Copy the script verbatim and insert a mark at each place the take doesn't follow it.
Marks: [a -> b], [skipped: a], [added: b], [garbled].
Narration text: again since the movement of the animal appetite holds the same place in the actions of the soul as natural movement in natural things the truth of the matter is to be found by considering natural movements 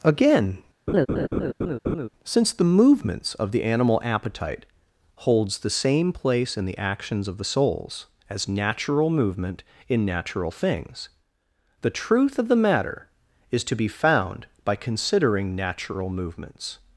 again since the [movement -> movements] of the animal appetite holds the same place in the actions of the [soul -> souls] as natural movement in natural things the truth of the matter is to be found by considering natural movements